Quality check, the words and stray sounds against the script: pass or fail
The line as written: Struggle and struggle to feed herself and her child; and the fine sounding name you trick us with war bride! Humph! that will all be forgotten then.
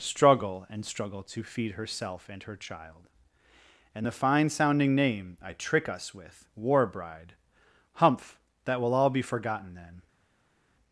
fail